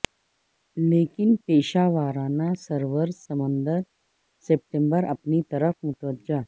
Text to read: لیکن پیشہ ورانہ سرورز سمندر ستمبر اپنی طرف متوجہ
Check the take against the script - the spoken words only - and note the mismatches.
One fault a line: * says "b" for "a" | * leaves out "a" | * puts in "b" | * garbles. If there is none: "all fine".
all fine